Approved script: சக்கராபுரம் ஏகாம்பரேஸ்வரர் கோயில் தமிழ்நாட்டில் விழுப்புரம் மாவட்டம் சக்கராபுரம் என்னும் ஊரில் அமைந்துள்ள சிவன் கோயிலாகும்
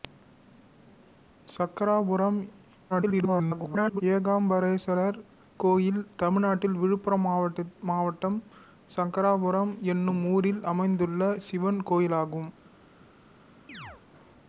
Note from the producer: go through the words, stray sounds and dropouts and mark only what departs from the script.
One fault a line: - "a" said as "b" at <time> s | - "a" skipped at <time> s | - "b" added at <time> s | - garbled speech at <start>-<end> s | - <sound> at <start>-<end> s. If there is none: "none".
- garbled speech at 2.9-4.0 s
- chirp at 13.7-14.0 s